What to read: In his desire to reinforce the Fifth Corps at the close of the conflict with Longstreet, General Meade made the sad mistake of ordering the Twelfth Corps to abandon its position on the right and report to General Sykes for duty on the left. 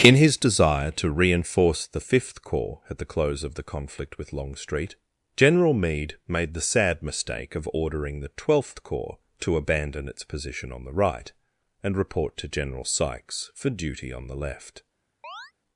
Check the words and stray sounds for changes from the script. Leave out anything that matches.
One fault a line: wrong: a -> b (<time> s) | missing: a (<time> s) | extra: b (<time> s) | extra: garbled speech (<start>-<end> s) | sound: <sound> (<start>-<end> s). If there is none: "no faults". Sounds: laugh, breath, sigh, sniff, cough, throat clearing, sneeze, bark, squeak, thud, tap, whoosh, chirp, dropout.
sound: chirp (15.2-15.5 s)